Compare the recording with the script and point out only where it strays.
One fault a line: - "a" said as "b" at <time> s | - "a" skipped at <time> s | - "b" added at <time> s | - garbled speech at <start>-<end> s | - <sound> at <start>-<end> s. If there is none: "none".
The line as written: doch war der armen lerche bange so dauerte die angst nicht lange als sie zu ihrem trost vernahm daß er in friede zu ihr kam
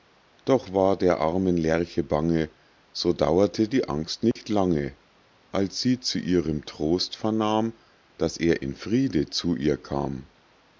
- dropout at 4.3-4.4 s